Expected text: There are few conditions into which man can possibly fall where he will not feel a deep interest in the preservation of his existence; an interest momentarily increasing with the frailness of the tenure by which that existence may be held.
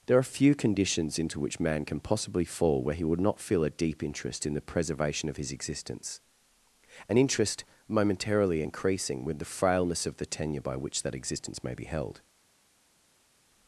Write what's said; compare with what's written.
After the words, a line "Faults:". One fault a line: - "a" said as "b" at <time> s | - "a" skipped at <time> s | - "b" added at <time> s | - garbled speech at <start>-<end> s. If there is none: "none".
There are few conditions into which man can possibly fall where he would not feel a deep interest in the preservation of his existence; an interest momentarily increasing with the frailness of the tenure by which that existence may be held.
Faults:
- "will" said as "would" at 3.0 s